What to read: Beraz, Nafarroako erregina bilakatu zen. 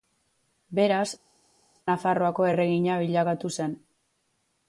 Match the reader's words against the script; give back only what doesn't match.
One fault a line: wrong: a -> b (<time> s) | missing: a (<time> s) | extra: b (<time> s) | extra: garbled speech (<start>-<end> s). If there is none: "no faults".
no faults